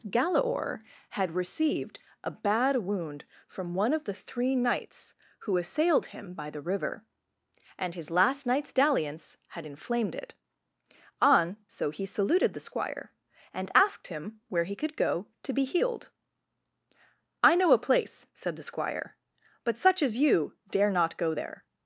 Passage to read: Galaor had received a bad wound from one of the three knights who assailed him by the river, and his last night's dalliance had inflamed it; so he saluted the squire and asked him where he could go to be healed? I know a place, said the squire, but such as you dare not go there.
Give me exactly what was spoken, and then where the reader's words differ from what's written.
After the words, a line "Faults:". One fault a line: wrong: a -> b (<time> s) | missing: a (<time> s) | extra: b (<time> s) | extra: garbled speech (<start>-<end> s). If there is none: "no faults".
Galaor had received a bad wound from one of the three knights who assailed him by the river, and his last night's dalliance had inflamed it; on so he saluted the squire and asked him where he could go to be healed? I know a place, said the squire, but such as you dare not go there.
Faults:
extra: on (11.2 s)